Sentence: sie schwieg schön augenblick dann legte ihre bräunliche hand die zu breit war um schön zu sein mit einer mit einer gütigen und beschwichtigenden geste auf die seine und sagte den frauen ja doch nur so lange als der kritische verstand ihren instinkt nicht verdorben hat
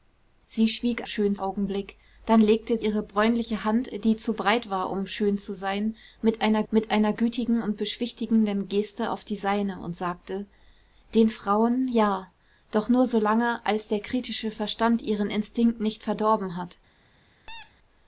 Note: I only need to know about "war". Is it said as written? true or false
true